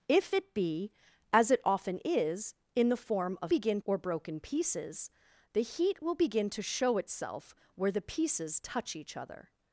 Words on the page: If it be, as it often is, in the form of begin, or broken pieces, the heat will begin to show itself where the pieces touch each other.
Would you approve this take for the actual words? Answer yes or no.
yes